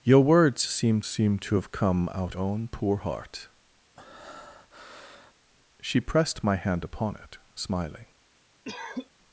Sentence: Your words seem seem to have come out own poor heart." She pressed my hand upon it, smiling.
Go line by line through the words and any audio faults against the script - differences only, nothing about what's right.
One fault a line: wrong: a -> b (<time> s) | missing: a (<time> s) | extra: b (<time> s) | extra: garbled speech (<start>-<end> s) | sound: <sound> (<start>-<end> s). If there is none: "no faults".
sound: breath (4.0-5.3 s)
sound: cough (8.6-9.1 s)